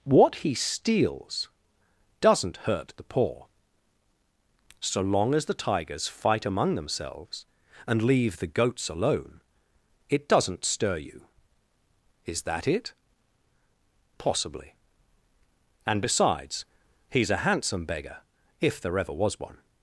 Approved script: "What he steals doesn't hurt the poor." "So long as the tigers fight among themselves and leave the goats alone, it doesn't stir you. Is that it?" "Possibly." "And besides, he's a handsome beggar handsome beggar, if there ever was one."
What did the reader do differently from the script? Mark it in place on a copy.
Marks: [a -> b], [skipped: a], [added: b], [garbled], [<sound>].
"What he steals doesn't hurt the poor." "So long as the tigers fight among themselves and leave the goats alone, it doesn't stir you. Is that it?" "Possibly." "And besides, he's a handsome beggar [skipped: handsome beggar,] if there ever was one."